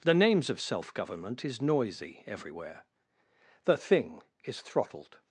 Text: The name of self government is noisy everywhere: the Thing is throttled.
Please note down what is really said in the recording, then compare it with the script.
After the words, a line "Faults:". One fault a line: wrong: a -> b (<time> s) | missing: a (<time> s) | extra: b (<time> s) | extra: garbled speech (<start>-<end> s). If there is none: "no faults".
The names of self government is noisy everywhere: the Thing is throttled.
Faults:
wrong: name -> names (0.1 s)